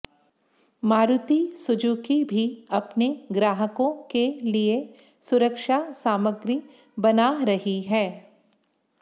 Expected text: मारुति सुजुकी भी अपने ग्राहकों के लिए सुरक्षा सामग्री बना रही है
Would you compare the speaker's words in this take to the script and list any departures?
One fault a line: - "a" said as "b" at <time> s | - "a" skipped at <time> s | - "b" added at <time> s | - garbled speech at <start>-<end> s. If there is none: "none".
none